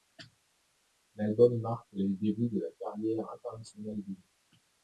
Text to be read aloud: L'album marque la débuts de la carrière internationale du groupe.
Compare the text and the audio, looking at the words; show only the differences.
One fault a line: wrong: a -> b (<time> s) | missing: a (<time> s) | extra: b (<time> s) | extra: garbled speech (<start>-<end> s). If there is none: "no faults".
wrong: la -> les (1.9 s)